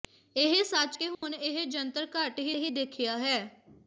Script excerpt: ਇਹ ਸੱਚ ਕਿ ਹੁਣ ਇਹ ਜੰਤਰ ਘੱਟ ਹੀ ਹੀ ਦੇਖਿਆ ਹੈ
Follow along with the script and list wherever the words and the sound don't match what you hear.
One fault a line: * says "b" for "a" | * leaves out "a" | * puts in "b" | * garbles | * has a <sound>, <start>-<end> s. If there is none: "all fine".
* has a dropout, 1.1-1.2 s